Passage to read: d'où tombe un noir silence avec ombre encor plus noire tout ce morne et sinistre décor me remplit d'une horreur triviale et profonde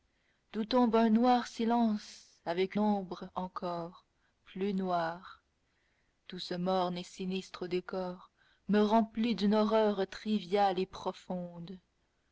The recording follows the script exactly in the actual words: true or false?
true